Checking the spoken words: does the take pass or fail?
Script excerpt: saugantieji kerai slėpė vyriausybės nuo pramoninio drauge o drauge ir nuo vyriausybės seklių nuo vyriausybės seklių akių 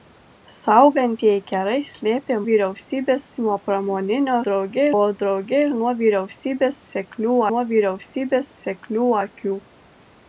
pass